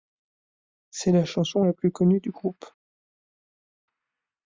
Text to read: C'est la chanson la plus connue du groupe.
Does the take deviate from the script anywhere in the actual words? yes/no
no